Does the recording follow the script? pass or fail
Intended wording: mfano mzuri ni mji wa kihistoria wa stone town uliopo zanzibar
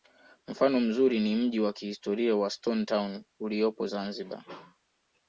pass